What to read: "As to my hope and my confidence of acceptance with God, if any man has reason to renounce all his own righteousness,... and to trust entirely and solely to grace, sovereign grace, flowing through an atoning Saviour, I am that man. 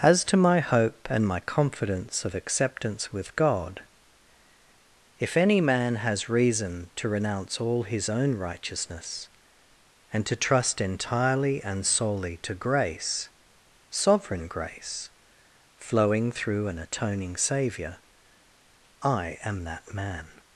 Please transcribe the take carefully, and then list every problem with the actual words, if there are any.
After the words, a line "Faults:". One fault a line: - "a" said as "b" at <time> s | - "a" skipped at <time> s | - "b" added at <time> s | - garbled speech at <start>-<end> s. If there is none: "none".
"As to my hope and my confidence of acceptance with God, if any man has reason to renounce all his own righteousness,... and to trust entirely and solely to grace, sovereign grace, flowing through an atoning Saviour, I am that man.
Faults:
none